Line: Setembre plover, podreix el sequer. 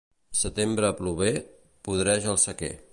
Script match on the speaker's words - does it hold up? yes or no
yes